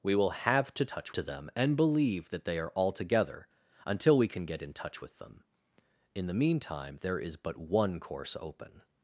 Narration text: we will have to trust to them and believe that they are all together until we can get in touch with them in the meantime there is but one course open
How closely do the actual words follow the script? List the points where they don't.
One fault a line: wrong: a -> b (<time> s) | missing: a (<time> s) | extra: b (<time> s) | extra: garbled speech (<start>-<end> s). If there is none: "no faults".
wrong: trust -> touch (0.8 s)